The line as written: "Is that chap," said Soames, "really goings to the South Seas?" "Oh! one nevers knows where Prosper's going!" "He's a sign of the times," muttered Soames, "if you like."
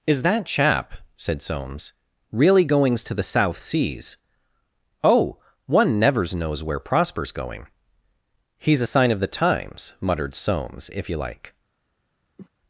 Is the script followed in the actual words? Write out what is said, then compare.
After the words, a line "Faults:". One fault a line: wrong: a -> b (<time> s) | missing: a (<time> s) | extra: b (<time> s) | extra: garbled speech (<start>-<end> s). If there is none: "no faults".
"Is that chap," said Soames, "really goings to the South Seas?" "Oh! one nevers knows where Prosper's going!" "He's a sign of the times," muttered Soames, "if you like."
Faults:
no faults